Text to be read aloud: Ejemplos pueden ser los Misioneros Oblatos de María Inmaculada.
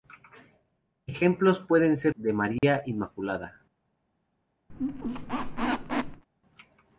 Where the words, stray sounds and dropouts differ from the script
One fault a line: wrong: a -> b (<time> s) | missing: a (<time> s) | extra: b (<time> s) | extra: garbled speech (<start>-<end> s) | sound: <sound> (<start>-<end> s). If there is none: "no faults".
missing: los Misioneros Oblatos (2.1 s)
sound: dropout (2.6-2.6 s)
sound: squeak (4.7-6.2 s)